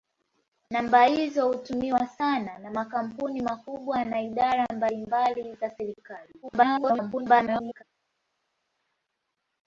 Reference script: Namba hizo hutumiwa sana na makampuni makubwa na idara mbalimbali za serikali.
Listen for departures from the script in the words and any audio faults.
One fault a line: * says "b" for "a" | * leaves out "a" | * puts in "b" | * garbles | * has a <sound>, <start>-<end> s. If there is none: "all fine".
* garbles